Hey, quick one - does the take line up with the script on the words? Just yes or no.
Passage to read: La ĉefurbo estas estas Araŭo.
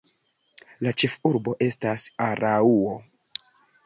no